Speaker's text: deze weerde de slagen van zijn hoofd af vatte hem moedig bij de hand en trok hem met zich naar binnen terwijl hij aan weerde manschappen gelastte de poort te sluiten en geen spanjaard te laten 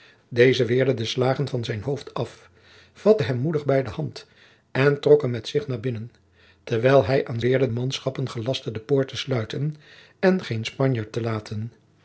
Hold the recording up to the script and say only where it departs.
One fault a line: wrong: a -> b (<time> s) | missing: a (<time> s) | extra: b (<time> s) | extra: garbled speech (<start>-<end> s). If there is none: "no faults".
no faults